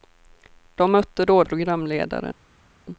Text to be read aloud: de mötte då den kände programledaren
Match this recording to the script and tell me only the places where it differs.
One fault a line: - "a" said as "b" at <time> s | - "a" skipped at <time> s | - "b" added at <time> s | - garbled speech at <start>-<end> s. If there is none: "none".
- "den kände" skipped at 1.4 s